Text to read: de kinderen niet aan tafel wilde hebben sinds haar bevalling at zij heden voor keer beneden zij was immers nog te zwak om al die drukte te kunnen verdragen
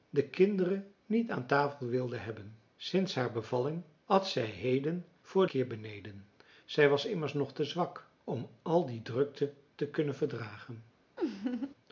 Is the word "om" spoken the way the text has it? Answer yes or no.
yes